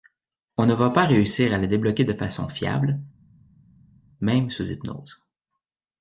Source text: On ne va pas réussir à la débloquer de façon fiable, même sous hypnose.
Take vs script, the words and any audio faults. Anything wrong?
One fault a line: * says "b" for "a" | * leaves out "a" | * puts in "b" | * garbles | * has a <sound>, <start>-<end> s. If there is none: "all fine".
all fine